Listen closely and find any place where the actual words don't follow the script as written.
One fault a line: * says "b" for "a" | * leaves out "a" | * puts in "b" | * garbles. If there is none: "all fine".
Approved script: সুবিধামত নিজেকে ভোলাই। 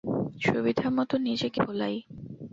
all fine